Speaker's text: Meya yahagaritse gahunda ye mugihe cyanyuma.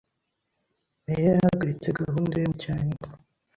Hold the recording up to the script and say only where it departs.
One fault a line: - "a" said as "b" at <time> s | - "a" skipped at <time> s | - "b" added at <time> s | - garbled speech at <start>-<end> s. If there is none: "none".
- "mugihe" skipped at 2.5 s